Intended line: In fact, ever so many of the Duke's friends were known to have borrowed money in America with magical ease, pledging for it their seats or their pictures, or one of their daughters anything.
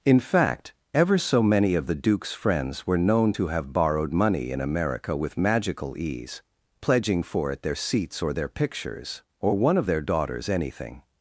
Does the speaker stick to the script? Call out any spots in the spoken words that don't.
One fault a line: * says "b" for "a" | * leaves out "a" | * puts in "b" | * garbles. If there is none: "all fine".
all fine